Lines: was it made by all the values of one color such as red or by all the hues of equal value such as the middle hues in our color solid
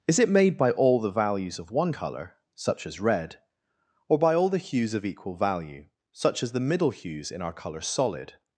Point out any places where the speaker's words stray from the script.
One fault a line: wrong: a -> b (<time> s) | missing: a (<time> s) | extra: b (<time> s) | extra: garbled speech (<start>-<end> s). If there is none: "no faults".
wrong: was -> is (0.1 s)